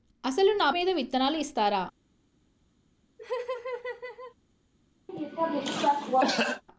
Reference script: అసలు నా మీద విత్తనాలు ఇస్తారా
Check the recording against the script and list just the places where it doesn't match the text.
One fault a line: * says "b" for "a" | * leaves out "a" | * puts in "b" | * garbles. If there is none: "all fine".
all fine